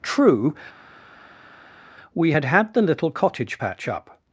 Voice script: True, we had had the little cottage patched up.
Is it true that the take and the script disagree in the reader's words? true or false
true